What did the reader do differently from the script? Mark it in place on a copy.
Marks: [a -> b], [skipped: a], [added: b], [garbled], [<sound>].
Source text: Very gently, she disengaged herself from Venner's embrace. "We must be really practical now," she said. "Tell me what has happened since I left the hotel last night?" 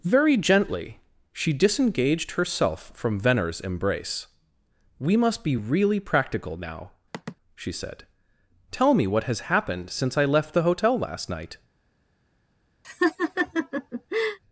Very gently, she disengaged herself from Venner's embrace. "We must be really practical now," [sigh] she said. "Tell me what has happened since I left the hotel last night?" [laugh]